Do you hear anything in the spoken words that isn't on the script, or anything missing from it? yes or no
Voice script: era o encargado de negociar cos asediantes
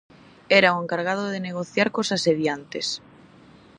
no